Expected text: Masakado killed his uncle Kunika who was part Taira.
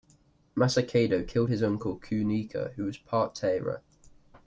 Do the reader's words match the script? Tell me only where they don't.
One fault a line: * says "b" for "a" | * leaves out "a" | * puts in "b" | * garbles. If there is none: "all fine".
all fine